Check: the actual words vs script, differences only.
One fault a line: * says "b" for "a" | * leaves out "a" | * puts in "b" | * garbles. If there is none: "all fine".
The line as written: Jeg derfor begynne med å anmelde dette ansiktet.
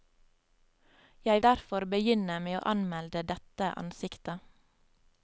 all fine